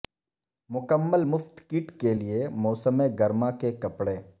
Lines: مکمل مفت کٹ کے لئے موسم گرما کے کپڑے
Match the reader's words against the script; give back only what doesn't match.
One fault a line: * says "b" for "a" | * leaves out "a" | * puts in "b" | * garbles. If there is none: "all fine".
all fine